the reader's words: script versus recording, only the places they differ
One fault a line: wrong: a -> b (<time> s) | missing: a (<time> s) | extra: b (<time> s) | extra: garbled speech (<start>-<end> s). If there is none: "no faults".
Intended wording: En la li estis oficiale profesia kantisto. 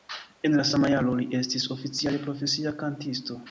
extra: sama jaro (0.7 s)